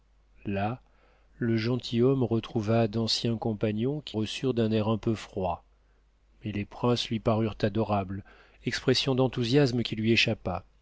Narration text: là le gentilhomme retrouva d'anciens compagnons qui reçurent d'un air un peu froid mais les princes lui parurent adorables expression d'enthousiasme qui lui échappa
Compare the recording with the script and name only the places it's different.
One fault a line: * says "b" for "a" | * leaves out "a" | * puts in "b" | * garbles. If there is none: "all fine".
all fine